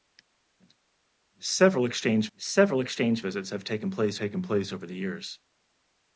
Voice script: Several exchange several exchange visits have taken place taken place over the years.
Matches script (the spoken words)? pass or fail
pass